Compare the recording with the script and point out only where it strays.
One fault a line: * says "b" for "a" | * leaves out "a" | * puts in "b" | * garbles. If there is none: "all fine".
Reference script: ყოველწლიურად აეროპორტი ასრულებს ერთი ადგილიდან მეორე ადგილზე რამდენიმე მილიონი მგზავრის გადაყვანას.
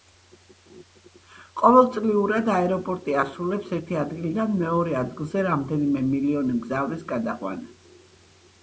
all fine